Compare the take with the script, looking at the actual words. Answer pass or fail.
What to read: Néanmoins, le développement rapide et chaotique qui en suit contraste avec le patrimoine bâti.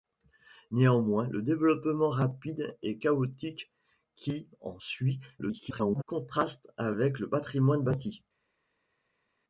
fail